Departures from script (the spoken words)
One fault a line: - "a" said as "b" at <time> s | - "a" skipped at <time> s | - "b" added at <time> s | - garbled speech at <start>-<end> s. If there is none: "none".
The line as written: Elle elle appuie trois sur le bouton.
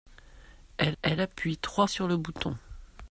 none